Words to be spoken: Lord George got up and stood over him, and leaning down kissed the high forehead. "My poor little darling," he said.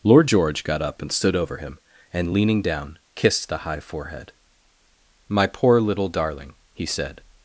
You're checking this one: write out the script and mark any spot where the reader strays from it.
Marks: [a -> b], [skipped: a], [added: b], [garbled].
Lord George got up and stood over him, and leaning down kissed the high forehead. "My poor little darling," he said.